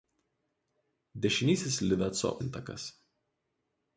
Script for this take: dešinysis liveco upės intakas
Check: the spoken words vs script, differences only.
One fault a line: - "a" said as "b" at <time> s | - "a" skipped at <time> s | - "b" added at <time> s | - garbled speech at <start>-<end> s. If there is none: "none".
- "upės" skipped at 2.3 s